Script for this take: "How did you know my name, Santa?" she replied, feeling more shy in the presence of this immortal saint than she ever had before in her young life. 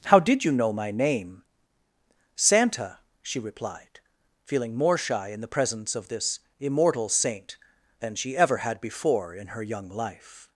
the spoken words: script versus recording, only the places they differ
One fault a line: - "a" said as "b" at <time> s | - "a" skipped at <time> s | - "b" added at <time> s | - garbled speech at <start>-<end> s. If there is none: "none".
none